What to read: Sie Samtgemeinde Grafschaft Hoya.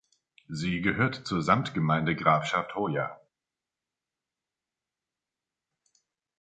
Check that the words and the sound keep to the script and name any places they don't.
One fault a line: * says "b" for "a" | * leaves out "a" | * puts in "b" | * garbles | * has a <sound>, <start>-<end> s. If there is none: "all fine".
* puts in "gehört zur"